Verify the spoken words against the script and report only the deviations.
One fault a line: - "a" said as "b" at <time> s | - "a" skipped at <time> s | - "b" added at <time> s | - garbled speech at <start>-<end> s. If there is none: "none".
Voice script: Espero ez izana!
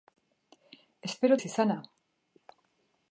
none